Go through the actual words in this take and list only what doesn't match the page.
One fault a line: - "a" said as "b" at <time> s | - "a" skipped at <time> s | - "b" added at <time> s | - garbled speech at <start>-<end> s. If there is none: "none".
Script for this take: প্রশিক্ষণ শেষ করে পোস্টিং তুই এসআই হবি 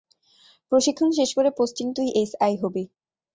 none